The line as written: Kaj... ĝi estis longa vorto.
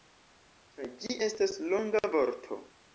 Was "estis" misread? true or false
true